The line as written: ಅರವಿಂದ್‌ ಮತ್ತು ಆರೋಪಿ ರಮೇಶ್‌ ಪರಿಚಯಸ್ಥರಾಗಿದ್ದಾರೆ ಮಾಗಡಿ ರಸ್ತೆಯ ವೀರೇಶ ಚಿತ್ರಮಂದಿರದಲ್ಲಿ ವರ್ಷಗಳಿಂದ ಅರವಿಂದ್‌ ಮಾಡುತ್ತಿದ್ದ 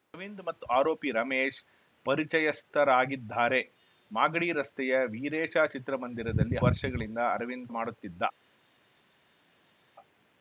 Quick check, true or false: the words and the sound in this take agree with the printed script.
true